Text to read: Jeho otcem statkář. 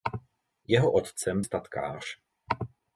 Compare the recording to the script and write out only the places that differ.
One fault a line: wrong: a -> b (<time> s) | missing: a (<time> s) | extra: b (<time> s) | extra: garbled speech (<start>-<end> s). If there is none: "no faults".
no faults